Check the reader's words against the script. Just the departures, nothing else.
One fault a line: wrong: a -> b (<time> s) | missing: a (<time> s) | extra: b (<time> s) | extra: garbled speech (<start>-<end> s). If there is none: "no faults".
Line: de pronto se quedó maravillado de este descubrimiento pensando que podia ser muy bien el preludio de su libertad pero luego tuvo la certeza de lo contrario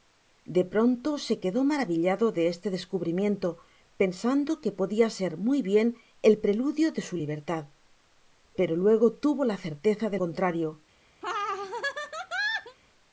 missing: lo (10.2 s)